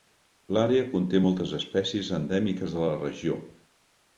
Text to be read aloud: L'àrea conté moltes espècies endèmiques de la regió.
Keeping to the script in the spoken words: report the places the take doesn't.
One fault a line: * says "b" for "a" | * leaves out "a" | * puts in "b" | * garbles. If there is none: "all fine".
all fine